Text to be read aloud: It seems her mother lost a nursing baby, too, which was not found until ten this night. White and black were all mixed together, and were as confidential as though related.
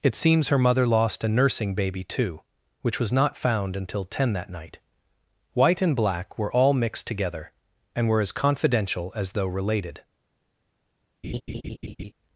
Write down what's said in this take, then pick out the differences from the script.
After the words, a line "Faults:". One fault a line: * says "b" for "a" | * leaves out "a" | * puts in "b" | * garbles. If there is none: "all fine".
It seems her mother lost a nursing baby, too, which was not found until ten that night. White and black were all mixed together, and were as confidential as though related.
Faults:
* says "that" for "this"